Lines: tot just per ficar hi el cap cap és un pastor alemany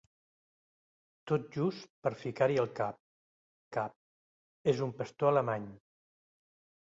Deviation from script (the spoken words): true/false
false